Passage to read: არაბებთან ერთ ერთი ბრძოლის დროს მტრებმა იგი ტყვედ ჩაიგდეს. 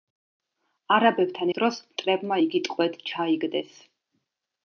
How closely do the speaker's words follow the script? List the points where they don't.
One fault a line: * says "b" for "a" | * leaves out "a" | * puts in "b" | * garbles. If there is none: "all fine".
* leaves out "ერთ ერთი ბრძოლის"